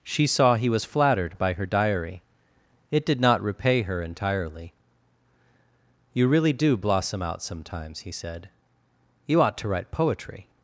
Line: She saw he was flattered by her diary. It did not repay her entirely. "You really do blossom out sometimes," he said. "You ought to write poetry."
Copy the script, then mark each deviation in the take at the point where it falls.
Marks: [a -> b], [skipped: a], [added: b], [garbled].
She saw he was flattered by her diary. It did not repay her entirely. "You really do blossom out sometimes," he said. "You ought to write poetry."